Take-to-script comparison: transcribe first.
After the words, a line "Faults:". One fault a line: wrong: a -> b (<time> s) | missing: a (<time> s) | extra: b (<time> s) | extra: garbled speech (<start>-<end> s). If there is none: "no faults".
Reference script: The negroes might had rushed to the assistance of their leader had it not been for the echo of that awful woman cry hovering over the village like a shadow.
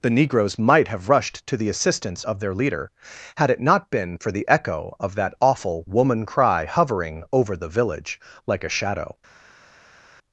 The negroes might have rushed to the assistance of their leader had it not been for the echo of that awful woman cry hovering over the village like a shadow.
Faults:
wrong: had -> have (0.9 s)